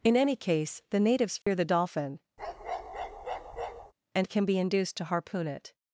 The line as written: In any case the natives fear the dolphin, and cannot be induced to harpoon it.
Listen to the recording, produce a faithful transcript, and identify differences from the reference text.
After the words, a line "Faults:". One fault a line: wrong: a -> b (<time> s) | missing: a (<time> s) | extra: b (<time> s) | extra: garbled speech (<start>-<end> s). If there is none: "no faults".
In any case the natives fear the dolphin, and can be induced to harpoon it.
Faults:
wrong: cannot -> can (4.3 s)